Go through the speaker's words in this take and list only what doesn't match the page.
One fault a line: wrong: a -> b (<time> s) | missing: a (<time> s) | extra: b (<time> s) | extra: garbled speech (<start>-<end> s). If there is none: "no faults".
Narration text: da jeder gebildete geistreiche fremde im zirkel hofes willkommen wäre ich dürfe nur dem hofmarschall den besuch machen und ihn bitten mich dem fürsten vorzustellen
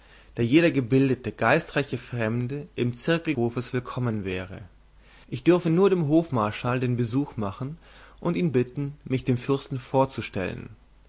no faults